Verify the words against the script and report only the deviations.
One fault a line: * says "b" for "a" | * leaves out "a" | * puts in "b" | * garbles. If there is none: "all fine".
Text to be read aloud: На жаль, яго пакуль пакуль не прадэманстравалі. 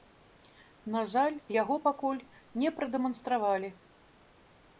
* leaves out "пакуль"